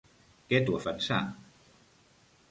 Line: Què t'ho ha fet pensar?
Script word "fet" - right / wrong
wrong